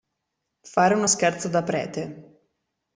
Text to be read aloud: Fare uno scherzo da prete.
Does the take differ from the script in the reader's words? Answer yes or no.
no